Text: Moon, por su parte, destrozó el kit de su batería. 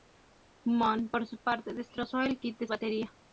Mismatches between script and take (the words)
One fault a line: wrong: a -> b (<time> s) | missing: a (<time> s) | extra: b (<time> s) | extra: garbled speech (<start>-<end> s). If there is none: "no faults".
missing: su (2.7 s)